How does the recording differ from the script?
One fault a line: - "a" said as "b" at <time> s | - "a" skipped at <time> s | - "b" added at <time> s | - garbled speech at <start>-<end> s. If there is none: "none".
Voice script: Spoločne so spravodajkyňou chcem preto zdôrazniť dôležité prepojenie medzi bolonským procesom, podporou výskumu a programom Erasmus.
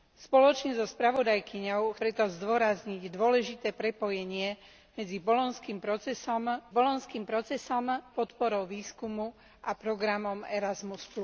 - "chcem" skipped at 2.0 s
- "bolonským procesom" added at 6.7 s